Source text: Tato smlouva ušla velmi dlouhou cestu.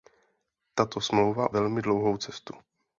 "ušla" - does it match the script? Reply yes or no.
no